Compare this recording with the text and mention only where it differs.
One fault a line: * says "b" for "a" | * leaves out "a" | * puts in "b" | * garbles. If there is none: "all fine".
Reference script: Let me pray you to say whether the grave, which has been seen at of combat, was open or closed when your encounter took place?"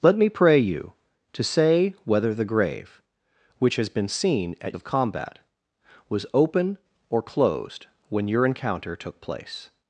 all fine